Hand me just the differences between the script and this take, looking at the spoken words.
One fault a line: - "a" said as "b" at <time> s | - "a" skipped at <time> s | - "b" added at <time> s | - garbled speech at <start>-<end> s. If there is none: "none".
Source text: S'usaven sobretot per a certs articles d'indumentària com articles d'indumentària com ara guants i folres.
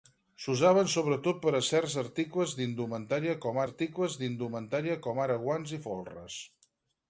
none